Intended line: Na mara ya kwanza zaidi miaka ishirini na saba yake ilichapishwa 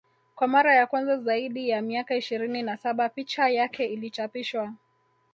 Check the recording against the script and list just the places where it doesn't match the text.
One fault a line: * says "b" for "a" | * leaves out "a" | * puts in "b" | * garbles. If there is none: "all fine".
* says "Kwa" for "Na"
* puts in "ya"
* puts in "picha"